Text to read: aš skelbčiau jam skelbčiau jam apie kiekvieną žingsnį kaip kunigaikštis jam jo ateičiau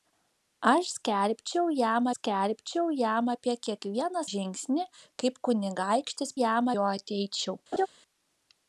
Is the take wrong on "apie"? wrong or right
right